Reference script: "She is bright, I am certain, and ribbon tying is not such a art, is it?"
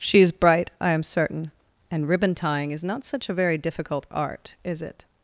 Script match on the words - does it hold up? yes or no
no